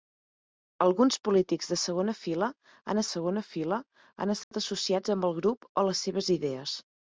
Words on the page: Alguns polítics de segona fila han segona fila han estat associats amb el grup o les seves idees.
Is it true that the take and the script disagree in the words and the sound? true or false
true